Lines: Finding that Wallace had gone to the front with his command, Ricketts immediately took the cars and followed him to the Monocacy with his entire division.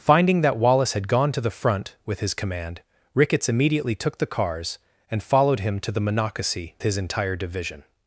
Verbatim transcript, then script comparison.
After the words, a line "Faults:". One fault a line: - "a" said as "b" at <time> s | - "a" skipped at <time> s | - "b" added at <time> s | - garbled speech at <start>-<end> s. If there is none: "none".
Finding that Wallace had gone to the front with his command, Ricketts immediately took the cars and followed him to the Monocacy his entire division.
Faults:
- "with" skipped at 6.7 s